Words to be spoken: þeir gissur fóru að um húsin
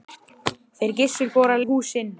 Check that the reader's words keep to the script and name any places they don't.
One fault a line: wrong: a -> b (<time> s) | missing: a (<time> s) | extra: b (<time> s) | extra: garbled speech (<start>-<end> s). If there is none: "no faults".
no faults